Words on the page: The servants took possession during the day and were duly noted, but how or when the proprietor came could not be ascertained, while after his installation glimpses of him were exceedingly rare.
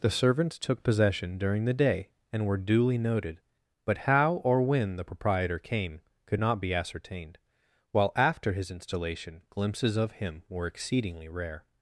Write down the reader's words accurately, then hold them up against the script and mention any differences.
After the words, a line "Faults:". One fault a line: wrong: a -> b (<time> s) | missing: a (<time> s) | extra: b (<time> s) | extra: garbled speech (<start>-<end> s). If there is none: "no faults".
The servants took possession during the day and were duly noted, but how or when the proprietor came could not be ascertained, while after his installation glimpses of him were exceedingly rare.
Faults:
no faults